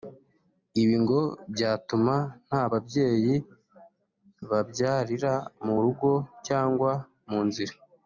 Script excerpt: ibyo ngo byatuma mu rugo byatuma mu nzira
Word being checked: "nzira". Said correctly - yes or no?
yes